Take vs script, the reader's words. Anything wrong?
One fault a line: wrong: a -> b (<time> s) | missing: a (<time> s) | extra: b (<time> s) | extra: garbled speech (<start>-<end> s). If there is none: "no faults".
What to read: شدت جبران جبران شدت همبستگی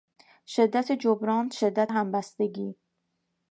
missing: جبران (1.5 s)